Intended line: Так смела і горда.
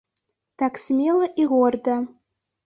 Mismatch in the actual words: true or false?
false